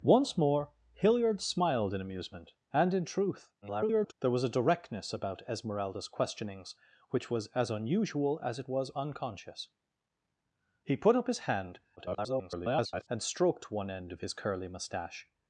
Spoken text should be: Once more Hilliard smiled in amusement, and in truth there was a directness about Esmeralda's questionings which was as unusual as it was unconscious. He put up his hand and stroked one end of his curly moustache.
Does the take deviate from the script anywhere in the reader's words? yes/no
yes